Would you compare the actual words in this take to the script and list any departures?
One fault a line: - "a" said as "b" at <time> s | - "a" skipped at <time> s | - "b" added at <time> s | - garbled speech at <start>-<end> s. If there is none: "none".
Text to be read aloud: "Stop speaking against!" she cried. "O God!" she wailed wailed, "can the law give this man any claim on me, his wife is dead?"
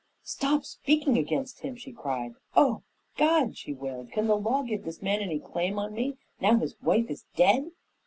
- "him" added at 1.6 s
- "wailed" skipped at 4.1 s
- "now" added at 6.4 s